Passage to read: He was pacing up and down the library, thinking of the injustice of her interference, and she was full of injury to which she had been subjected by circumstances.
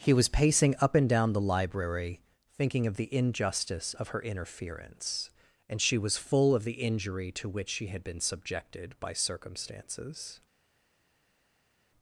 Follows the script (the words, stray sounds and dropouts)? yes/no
no